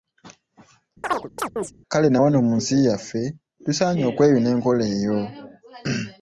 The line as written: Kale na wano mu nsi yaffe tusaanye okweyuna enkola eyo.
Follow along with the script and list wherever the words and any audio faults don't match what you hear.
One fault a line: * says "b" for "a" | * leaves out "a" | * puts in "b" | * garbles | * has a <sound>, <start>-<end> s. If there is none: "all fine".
* has a chirp, 1.0-1.7 s